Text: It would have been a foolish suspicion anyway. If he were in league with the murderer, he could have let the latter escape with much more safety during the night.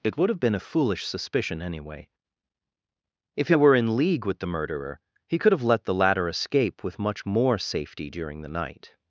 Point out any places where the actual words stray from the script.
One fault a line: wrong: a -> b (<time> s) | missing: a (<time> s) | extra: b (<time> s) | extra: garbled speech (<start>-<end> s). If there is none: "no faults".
no faults